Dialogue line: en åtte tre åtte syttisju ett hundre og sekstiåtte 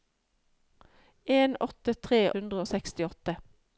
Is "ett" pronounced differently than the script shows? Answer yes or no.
yes